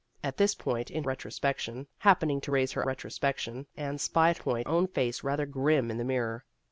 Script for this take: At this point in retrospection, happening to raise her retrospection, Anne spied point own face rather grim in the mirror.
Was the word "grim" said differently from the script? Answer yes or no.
no